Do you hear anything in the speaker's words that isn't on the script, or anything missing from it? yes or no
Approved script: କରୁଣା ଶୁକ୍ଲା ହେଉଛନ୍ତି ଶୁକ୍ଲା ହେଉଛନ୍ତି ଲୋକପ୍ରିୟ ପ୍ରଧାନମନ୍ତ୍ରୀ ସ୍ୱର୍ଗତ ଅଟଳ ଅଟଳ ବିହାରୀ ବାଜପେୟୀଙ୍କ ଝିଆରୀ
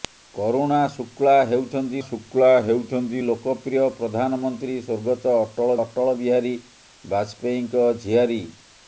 no